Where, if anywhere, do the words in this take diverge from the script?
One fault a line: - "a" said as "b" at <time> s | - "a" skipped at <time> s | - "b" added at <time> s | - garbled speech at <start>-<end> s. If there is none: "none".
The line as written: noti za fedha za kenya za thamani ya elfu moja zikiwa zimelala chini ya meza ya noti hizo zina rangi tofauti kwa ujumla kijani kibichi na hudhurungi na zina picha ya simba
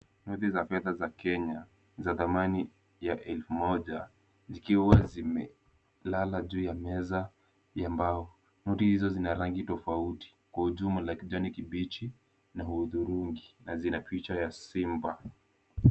- "chini" said as "juu" at 6.4 s
- "mbao" added at 7.9 s